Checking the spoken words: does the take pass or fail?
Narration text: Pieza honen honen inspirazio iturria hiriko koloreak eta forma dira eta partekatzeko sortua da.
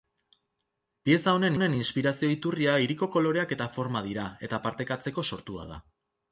pass